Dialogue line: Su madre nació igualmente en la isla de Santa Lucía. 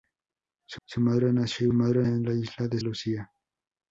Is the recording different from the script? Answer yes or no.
yes